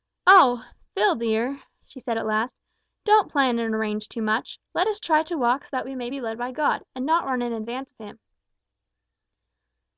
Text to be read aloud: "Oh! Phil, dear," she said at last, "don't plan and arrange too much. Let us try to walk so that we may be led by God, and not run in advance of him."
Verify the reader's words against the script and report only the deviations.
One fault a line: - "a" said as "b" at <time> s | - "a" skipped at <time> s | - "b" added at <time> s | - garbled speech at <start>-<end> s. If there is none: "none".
none